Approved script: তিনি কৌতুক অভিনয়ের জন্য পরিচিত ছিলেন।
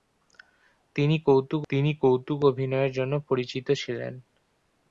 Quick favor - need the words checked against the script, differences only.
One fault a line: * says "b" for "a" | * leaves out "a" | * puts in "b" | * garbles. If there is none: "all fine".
* puts in "তিনি কৌতুক"